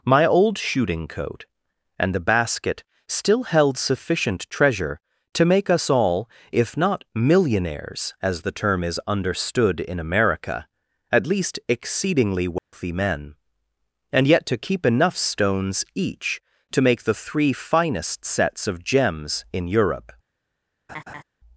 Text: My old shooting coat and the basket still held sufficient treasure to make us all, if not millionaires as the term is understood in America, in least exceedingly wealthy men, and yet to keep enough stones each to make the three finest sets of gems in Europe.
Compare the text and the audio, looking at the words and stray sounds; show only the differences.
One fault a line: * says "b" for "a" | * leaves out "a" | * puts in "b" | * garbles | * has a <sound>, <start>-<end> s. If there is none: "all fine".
* says "at" for "in"
* has a dropout, 12.6-12.7 s
* has a laugh, 20.9-21.2 s